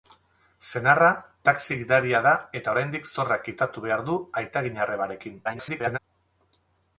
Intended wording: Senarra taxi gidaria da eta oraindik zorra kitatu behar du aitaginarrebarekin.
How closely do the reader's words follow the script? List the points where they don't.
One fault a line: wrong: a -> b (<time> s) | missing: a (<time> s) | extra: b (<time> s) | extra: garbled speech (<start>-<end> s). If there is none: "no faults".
extra: garbled speech (5.4-6.0 s)